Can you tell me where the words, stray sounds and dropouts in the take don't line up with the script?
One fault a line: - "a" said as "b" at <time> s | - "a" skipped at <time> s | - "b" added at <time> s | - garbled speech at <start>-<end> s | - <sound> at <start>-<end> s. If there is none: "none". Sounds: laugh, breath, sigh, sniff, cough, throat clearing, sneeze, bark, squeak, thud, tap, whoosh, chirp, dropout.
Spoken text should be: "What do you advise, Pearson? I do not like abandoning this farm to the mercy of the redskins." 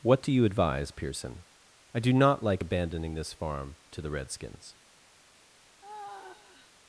- "mercy of the" skipped at 4.1 s
- sigh at 5.8-6.7 s